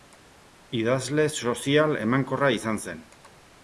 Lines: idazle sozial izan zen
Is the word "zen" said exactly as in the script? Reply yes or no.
yes